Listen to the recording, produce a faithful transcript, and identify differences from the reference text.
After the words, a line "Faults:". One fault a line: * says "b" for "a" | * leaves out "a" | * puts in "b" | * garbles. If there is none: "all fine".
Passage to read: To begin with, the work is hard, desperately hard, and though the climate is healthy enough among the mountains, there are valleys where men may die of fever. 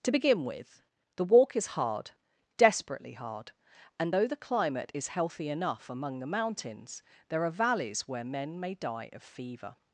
To begin with, the walk is hard, desperately hard, and though the climate is healthy enough among the mountains, there are valleys where men may die of fever.
Faults:
* says "walk" for "work"